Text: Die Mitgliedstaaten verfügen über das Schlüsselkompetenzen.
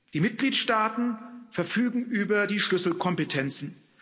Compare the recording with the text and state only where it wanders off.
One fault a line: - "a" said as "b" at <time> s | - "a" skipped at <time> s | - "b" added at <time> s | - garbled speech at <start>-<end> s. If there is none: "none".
- "das" said as "die" at 2.4 s